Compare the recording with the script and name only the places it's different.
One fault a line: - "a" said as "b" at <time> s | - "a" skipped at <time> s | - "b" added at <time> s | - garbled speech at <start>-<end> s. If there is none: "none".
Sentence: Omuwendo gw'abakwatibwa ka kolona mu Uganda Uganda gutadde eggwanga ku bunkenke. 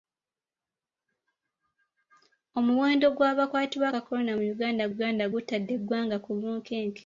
none